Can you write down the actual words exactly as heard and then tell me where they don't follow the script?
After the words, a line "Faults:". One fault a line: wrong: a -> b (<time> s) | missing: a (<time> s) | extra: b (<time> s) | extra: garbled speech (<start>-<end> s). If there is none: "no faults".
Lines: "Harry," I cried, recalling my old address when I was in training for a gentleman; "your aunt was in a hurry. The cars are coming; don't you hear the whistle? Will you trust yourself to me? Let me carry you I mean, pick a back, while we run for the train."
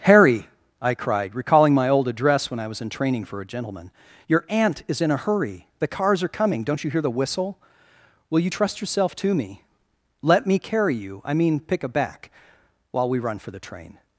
"Harry," I cried, recalling my old address when I was in training for a gentleman; "your aunt is in a hurry. The cars are coming; don't you hear the whistle? Will you trust yourself to me? Let me carry you I mean, pick a back, while we run for the train."
Faults:
wrong: was -> is (4.9 s)